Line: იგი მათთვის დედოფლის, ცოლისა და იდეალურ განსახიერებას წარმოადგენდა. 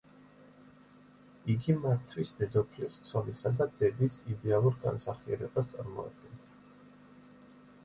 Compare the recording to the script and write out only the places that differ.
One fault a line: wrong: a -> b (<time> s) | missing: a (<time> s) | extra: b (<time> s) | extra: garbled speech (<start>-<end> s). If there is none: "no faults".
extra: დედის (3.8 s)